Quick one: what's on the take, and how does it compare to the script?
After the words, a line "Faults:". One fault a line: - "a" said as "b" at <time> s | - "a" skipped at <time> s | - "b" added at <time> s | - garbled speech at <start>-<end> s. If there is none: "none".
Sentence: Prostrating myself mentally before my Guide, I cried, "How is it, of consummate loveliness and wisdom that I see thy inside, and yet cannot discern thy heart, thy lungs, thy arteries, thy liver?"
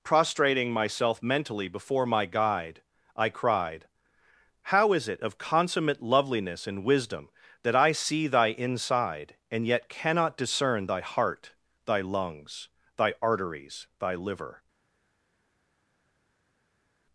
Prostrating myself mentally before my Guide, I cried, "How is it, of consummate loveliness and wisdom that I see thy inside, and yet cannot discern thy heart, thy lungs, thy arteries, thy liver?"
Faults:
none